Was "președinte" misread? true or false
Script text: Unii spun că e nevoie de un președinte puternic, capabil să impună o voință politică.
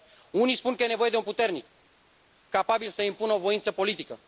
true